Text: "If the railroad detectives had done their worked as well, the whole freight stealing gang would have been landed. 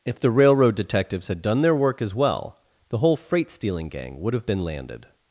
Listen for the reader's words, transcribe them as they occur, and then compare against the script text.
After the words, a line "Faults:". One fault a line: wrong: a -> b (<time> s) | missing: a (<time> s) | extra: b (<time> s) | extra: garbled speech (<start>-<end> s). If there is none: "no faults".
"If the railroad detectives had done their work as well, the whole freight stealing gang would have been landed.
Faults:
wrong: worked -> work (1.8 s)